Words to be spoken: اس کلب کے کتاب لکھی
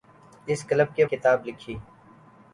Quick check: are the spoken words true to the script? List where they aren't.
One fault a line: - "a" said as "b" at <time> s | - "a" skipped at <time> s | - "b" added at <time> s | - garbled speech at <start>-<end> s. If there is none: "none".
none